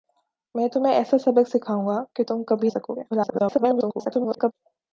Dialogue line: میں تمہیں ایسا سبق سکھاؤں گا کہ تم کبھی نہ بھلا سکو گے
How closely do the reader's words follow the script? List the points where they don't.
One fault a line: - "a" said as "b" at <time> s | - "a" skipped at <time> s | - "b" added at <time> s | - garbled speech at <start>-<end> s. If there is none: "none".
- "نہ بھلا" skipped at 2.7 s
- garbled speech at 3.1-4.5 s